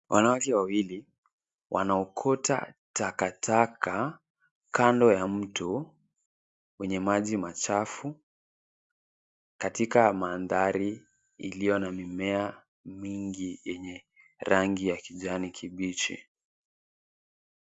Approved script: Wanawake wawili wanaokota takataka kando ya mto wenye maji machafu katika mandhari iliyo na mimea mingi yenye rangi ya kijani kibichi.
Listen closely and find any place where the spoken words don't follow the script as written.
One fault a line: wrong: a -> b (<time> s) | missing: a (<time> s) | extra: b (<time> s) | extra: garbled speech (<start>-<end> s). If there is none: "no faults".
no faults